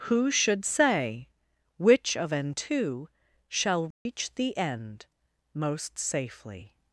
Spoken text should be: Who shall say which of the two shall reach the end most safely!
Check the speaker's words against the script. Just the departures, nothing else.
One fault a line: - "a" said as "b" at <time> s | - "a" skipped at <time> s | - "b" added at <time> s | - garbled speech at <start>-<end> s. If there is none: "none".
- "shall" said as "should" at 0.3 s
- "the" said as "an" at 2.3 s